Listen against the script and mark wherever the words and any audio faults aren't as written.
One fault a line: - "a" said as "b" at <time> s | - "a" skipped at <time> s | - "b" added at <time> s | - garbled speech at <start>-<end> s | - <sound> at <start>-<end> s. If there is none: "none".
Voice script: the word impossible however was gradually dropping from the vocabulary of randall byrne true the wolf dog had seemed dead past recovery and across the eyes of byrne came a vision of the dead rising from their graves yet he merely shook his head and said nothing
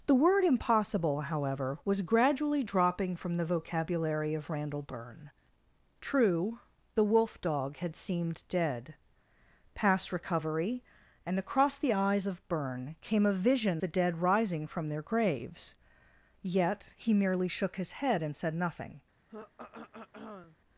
- "of" skipped at 13.8 s
- throat clearing at 19.3-20.6 s